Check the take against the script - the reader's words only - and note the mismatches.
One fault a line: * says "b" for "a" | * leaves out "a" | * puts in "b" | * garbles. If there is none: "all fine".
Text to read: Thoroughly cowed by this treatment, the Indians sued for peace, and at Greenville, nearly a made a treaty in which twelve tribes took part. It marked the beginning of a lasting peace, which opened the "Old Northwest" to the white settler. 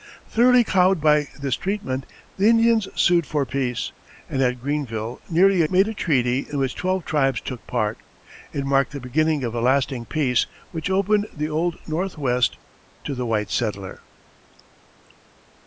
all fine